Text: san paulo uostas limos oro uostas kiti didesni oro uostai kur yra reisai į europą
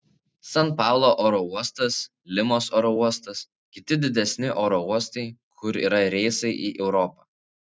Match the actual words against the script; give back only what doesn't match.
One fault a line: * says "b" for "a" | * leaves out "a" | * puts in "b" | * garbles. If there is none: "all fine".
* puts in "oro"